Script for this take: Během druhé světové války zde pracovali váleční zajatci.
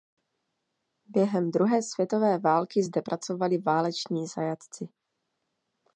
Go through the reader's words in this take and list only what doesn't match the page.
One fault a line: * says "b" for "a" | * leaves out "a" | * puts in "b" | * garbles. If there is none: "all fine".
all fine